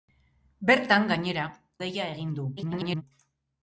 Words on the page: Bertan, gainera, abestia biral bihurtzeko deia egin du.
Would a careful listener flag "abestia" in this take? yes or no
yes